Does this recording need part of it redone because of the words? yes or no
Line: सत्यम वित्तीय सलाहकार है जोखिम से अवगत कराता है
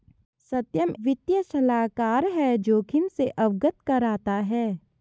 no